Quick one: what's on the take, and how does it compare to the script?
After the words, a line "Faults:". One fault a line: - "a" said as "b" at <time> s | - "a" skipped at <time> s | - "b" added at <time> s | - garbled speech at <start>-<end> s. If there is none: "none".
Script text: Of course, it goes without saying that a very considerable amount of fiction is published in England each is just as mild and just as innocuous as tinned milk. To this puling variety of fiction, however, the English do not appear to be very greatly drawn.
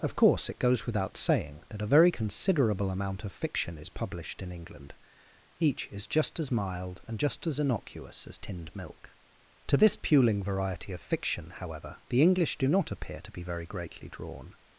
Of course, it goes without saying that a very considerable amount of fiction is published in England each is just as mild and just as innocuous as tinned milk. To this puling variety of fiction, however, the English do not appear to be very greatly drawn.
Faults:
none